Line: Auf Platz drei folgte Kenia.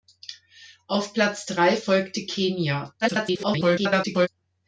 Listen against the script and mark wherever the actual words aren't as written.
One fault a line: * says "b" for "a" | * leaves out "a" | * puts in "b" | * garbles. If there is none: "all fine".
* garbles